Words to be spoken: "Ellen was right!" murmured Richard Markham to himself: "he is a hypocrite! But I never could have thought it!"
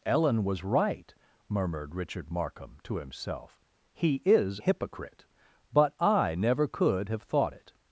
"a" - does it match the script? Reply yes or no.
no